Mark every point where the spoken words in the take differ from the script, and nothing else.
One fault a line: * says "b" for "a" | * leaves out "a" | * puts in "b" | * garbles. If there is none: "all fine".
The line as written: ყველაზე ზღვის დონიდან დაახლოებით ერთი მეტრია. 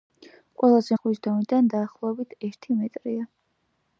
all fine